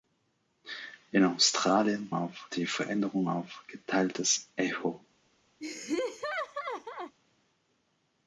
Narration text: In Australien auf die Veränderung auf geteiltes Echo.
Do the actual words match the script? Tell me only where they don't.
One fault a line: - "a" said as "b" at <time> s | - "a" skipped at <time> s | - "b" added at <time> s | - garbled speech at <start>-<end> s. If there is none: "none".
none